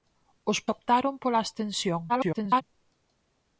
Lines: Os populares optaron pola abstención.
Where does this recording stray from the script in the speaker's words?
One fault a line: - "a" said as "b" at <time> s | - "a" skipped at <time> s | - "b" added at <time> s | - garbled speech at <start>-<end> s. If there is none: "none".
- "populares" skipped at 0.6 s
- garbled speech at 2.1-2.6 s